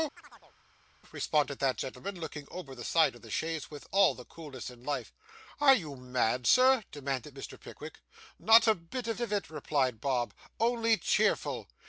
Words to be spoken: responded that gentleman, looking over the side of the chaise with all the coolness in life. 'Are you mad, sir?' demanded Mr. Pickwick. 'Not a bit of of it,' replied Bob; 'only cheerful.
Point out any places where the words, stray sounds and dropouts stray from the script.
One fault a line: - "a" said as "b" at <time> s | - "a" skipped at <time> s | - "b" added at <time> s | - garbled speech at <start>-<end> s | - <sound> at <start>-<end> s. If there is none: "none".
- chirp at 0.2-0.6 s